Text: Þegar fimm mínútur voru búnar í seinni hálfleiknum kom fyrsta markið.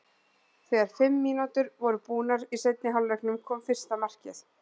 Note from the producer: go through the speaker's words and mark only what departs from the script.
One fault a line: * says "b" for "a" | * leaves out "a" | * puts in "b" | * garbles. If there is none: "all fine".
all fine